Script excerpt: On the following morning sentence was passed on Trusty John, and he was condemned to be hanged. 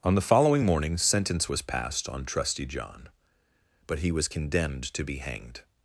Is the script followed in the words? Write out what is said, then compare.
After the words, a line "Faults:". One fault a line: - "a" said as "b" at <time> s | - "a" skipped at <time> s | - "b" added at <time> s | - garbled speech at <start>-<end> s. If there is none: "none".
On the following morning sentence was passed on Trusty John, but he was condemned to be hanged.
Faults:
- "and" said as "but" at 3.9 s